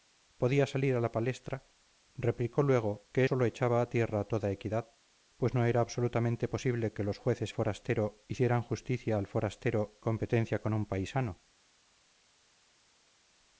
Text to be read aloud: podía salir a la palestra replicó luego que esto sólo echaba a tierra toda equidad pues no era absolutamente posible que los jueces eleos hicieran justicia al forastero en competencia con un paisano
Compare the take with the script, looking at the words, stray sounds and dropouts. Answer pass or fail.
fail